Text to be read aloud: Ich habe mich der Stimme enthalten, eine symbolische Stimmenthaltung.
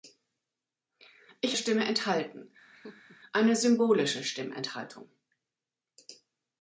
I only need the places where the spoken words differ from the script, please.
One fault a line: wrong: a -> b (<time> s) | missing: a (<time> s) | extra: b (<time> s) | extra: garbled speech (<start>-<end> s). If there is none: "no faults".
missing: habe mich der (1.6 s)